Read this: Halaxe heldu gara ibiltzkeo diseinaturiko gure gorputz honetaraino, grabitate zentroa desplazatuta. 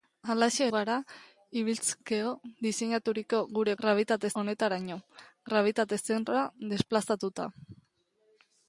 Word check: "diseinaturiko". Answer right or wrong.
right